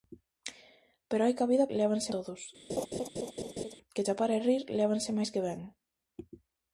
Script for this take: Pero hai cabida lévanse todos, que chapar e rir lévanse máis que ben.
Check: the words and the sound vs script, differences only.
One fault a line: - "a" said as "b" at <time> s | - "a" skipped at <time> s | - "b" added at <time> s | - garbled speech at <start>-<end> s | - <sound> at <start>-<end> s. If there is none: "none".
- laugh at 2.7-3.7 s